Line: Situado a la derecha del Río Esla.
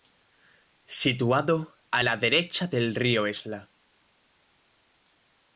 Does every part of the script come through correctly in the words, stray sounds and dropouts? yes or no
yes